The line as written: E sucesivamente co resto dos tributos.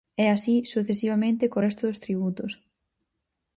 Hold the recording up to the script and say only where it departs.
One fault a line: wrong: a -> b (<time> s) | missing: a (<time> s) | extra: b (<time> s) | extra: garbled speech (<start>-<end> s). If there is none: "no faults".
extra: así (0.3 s)